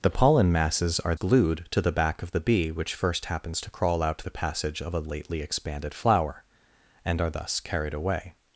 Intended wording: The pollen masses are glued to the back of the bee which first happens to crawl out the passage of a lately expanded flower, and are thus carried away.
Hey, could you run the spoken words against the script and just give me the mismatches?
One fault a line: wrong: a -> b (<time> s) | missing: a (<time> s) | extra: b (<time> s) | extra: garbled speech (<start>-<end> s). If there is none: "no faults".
no faults